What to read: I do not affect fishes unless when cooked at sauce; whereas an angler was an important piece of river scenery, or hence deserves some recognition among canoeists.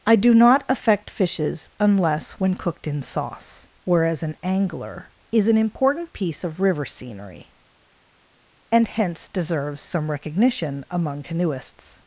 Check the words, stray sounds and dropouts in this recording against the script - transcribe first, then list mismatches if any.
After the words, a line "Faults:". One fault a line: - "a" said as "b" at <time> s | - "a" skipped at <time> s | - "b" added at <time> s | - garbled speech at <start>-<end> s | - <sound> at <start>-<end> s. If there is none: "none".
I do not affect fishes unless when cooked in sauce; whereas an angler is an important piece of river scenery, and hence deserves some recognition among canoeists.
Faults:
- "at" said as "in" at 2.9 s
- "was" said as "is" at 5.3 s
- "or" said as "and" at 8.7 s